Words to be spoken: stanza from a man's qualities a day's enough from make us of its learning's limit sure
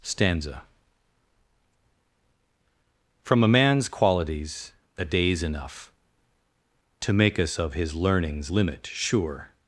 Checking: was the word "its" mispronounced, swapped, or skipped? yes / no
yes